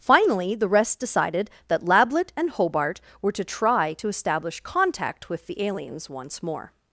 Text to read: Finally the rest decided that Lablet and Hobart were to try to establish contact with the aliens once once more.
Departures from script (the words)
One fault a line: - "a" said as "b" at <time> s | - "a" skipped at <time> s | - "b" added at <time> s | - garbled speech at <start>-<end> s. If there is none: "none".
- "once" skipped at 6.4 s